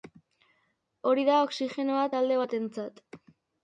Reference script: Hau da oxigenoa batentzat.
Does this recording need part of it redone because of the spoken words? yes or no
yes